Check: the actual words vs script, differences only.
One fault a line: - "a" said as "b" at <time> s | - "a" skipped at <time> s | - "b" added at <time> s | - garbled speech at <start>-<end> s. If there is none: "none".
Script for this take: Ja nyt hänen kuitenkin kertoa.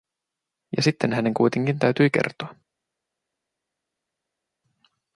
- "nyt" said as "sitten" at 0.8 s
- "täytyi" added at 1.8 s